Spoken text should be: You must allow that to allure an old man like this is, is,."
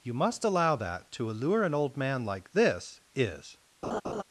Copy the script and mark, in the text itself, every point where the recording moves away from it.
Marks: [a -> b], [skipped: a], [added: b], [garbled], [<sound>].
You must allow that to allure an old man like this is, [skipped: is,."] [laugh]